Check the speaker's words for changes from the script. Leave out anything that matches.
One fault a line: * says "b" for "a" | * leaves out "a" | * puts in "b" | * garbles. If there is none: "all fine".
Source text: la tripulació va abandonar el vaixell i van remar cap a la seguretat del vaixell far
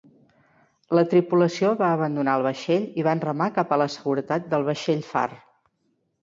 all fine